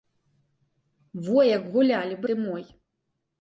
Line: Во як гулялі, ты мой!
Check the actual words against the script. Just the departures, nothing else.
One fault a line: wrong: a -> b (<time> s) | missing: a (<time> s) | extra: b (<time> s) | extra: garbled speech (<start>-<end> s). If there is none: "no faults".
no faults